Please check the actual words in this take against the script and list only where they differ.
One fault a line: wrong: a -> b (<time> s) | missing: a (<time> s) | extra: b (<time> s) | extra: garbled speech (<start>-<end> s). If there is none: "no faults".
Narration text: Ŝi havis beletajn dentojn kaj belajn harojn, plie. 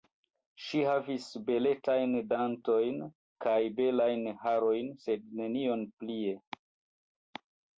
extra: sed nenion (5.1 s)